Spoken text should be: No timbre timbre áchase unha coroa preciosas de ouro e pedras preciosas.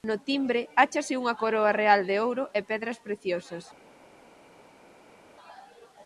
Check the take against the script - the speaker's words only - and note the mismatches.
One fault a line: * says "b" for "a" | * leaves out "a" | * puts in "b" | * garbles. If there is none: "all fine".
* leaves out "timbre"
* says "real" for "preciosas"